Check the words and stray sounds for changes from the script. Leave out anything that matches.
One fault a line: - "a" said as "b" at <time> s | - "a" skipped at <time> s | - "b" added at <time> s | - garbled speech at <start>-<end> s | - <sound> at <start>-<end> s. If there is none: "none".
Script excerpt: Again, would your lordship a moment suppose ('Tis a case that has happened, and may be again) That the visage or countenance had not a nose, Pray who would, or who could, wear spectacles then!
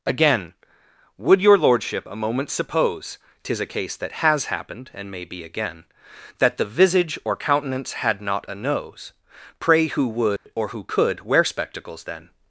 - dropout at 10.4-10.5 s